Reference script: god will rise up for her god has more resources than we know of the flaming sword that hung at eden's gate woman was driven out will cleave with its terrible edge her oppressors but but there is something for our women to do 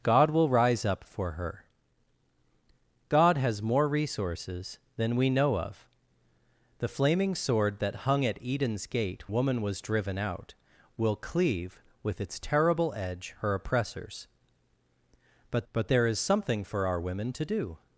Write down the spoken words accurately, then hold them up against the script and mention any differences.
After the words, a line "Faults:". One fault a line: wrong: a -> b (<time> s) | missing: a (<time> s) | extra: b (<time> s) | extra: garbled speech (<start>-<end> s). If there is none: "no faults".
god will rise up for her god has more resources than we know of the flaming sword that hung at eden's gate woman was driven out will cleave with its terrible edge her oppressors but but there is something for our women to do
Faults:
no faults